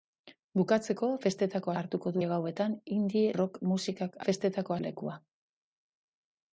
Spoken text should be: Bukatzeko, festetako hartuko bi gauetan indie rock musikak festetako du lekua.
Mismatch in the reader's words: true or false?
false